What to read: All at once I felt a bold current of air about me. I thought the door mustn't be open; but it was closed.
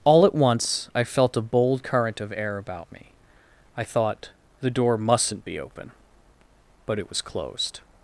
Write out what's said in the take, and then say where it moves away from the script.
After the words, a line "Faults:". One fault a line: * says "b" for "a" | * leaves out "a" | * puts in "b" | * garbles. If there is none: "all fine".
All at once I felt a bold current of air about me. I thought the door mustn't be open; but it was closed.
Faults:
all fine